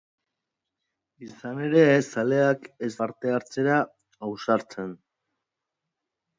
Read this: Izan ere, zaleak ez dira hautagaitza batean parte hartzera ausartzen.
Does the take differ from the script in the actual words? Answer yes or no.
yes